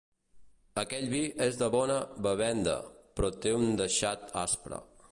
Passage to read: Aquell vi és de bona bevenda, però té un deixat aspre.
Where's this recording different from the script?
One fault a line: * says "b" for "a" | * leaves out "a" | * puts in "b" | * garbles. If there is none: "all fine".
all fine